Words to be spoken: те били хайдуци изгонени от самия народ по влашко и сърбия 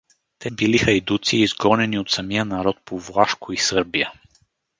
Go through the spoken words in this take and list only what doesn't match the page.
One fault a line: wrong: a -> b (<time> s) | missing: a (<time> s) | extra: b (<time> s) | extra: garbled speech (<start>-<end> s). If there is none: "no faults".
no faults